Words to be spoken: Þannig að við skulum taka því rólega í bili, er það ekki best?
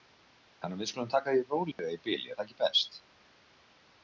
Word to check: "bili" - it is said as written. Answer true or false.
true